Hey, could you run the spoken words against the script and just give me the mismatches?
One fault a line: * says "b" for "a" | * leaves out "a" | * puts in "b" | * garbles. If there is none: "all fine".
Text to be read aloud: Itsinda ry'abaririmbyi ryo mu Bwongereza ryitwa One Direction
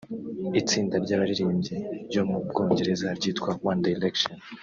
all fine